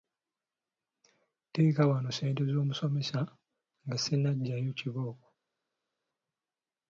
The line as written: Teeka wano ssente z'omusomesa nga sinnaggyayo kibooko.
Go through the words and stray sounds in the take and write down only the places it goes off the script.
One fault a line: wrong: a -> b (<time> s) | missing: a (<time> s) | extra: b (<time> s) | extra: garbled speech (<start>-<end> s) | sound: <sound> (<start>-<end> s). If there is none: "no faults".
no faults